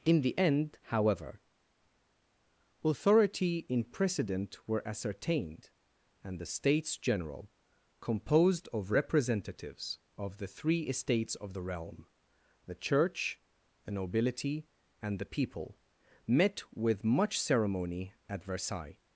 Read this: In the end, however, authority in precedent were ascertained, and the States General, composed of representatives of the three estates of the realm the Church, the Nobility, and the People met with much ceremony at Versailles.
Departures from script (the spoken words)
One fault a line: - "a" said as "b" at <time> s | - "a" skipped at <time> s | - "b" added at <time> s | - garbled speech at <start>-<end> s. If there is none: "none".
none